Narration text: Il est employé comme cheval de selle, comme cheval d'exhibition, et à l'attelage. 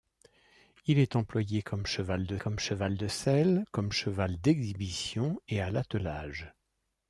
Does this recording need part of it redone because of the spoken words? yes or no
yes